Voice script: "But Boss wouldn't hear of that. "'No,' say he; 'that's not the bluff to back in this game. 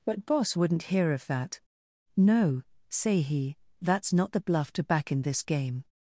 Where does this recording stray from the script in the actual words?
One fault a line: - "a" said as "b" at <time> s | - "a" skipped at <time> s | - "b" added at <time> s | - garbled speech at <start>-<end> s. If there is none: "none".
none